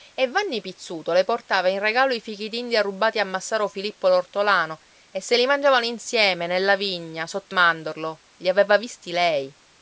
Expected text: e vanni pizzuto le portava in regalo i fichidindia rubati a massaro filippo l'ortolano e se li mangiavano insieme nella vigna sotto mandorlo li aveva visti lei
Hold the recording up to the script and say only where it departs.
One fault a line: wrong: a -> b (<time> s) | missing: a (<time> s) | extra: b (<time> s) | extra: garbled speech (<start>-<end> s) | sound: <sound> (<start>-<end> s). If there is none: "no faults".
no faults